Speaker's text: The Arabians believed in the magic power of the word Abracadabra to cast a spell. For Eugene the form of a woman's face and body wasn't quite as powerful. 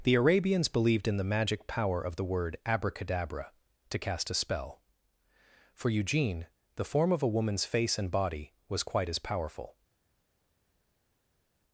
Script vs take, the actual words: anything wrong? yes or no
yes